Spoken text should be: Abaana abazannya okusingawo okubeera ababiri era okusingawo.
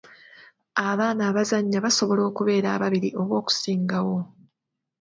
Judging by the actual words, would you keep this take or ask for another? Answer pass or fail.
fail